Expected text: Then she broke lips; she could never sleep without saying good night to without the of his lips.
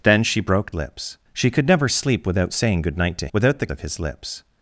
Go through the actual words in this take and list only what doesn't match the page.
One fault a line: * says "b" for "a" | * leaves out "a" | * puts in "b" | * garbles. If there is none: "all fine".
all fine